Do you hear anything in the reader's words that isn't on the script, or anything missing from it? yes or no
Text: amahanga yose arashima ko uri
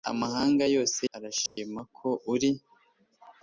no